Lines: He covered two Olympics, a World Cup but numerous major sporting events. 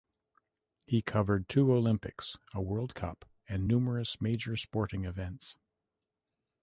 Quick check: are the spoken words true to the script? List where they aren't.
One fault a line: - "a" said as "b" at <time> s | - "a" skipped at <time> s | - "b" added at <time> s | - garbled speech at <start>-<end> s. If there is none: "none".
- "but" said as "and" at 3.5 s